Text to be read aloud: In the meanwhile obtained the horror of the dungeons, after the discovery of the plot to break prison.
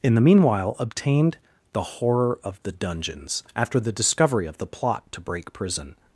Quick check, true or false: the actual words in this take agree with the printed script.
true